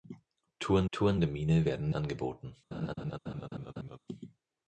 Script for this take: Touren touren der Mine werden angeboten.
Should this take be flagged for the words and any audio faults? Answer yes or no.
yes